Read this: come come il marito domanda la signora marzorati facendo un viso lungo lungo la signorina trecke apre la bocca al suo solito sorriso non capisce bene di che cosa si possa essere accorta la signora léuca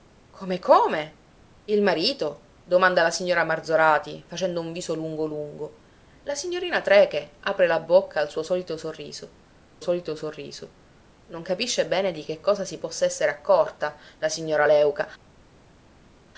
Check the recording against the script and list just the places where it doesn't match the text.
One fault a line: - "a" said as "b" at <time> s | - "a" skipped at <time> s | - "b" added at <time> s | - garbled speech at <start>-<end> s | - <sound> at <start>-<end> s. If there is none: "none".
- "solito sorriso" added at 9.8 s